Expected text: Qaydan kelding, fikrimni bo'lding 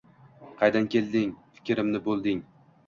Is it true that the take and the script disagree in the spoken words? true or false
false